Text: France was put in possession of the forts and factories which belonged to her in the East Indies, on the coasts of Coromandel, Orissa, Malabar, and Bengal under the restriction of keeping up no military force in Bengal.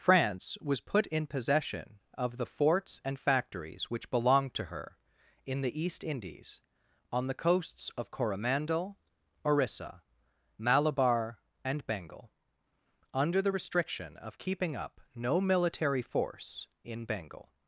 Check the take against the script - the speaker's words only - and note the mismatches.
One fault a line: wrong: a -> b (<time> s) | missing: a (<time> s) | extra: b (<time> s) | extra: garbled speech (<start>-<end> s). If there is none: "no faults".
no faults